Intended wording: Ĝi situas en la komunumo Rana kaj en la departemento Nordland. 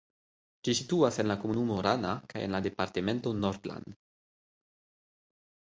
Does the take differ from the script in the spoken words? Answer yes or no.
no